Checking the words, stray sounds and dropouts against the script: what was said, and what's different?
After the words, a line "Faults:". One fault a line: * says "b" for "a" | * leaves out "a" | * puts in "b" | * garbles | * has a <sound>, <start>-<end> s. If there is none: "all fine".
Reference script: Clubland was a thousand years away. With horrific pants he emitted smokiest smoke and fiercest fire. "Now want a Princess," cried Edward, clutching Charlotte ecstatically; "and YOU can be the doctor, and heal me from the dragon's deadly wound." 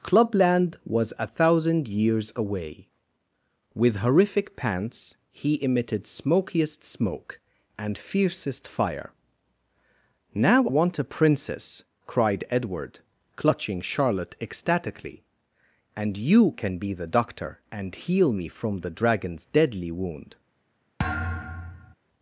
Clubland was a thousand years away. With horrific pants he emitted smokiest smoke and fiercest fire. "Now want a Princess," cried Edward, clutching Charlotte ecstatically; "and YOU can be the doctor, and heal me from the dragon's deadly wound."
Faults:
* has a thud, 21.0-21.9 s